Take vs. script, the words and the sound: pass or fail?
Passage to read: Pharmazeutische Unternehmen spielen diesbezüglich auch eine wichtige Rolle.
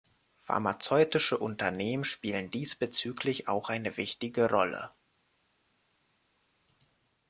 pass